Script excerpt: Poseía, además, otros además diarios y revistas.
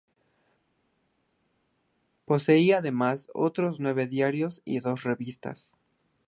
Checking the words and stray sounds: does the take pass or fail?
fail